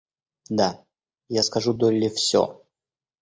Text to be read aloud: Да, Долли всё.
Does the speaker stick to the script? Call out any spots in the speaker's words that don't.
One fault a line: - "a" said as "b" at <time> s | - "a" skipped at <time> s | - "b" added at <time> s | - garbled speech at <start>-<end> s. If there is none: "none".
- "я скажу" added at 1.3 s